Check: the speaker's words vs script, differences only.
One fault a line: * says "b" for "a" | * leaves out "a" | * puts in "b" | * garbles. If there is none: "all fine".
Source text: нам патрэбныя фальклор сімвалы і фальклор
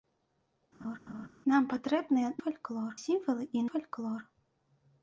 all fine